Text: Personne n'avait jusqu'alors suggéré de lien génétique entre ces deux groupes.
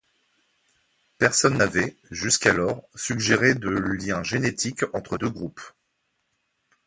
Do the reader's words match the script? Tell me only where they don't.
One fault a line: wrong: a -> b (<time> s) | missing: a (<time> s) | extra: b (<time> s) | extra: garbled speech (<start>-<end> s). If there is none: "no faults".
missing: ces (5.2 s)